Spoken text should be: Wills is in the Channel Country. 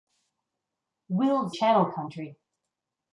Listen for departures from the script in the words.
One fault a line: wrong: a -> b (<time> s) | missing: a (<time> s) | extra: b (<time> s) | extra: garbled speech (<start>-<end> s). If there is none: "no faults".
missing: is in the (1.6 s)